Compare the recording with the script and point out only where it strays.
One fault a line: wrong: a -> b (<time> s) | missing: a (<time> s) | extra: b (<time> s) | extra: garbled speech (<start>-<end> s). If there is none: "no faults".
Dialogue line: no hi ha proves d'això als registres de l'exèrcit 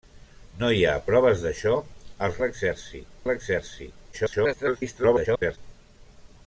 wrong: registres -> l'exèrcit (2.4 s)
extra: garbled speech (4.1-5.6 s)